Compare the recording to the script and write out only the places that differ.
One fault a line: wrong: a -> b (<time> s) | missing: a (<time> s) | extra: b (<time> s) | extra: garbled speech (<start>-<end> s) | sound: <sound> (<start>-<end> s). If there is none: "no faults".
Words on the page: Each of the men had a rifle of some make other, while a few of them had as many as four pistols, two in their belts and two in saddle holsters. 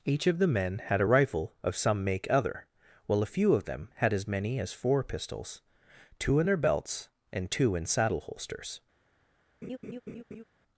sound: laugh (9.6-10.4 s)